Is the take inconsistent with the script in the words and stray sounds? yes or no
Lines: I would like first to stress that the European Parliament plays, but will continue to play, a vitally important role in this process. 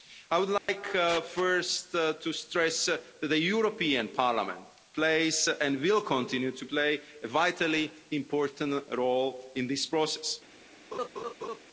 yes